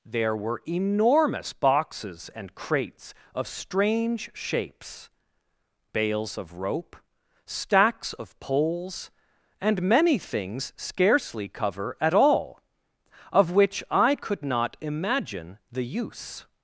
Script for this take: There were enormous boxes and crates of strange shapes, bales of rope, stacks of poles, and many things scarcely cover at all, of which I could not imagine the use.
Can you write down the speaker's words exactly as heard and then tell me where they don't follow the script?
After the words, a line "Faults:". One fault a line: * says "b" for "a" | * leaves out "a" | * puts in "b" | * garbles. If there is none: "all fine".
There were enormous boxes and crates of strange shapes, bales of rope, stacks of poles, and many things scarcely cover at all, of which I could not imagine the use.
Faults:
all fine